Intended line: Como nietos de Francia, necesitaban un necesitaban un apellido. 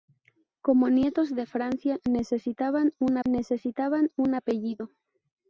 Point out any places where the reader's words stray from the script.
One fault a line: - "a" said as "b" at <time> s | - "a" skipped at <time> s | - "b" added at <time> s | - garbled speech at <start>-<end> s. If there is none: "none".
none